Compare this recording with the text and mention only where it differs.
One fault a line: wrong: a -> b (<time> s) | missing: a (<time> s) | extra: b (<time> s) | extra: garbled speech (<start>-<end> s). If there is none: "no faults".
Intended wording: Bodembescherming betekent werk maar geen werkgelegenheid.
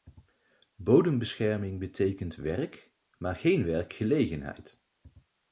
no faults